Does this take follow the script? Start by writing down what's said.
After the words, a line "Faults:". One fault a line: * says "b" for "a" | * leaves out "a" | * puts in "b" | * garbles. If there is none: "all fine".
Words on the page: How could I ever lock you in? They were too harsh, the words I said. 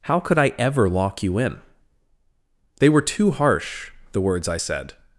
How could I ever lock you in? They were too harsh, the words I said.
Faults:
all fine